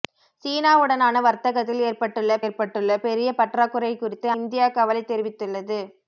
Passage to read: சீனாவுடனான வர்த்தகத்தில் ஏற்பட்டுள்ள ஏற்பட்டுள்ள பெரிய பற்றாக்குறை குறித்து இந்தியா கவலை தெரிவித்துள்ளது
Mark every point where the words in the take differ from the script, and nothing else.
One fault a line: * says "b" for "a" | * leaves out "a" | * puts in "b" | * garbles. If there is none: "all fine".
all fine